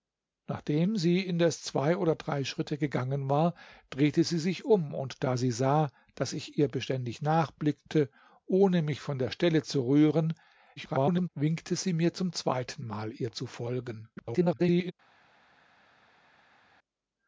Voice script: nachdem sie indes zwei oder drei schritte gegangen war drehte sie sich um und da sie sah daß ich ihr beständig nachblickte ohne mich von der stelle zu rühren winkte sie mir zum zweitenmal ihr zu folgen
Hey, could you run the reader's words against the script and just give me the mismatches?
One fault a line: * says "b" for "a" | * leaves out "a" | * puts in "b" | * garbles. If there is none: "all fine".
* garbles
* garbles